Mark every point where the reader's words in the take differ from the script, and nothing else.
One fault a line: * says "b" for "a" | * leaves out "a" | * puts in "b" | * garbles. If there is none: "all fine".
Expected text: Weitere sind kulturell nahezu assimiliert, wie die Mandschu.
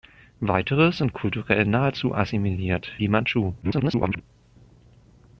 * leaves out "wie"
* garbles